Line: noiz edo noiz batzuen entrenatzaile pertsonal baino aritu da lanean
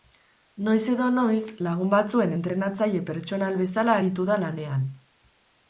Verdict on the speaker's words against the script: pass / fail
fail